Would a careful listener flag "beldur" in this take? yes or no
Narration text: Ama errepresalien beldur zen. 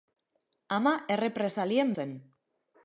yes